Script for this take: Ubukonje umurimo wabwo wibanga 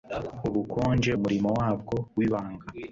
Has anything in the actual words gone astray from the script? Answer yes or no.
no